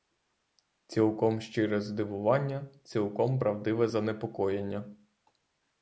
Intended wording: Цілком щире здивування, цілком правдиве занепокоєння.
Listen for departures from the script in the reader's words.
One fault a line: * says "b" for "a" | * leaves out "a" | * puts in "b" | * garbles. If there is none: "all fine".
all fine